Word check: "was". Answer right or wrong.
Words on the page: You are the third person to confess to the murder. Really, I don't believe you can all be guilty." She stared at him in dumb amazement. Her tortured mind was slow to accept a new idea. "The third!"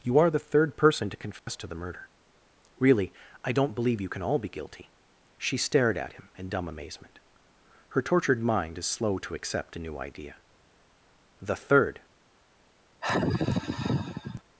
wrong